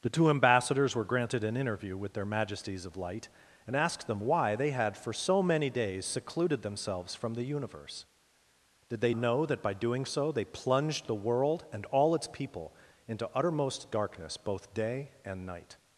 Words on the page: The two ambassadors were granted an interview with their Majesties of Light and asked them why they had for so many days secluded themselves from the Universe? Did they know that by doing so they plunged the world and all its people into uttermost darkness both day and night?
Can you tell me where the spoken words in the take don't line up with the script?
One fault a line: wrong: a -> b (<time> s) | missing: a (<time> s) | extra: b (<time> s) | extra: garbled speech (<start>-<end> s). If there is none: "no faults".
no faults